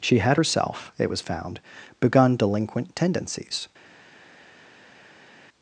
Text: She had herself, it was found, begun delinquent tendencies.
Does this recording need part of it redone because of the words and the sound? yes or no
no